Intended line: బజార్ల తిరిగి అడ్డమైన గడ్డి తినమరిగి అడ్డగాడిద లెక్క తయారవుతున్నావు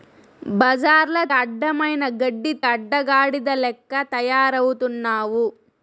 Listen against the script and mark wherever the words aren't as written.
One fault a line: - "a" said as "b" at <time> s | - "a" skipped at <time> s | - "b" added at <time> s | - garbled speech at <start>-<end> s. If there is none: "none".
- "తిరిగి" skipped at 1.2 s
- "తినమరిగి" skipped at 2.5 s